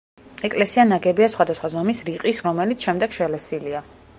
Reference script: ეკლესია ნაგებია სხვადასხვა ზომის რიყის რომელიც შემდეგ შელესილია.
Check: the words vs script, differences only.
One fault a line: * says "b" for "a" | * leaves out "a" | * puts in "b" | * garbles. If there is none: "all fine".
all fine